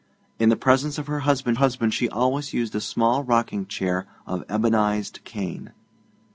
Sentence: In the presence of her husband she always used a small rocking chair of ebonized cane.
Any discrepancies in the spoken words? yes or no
yes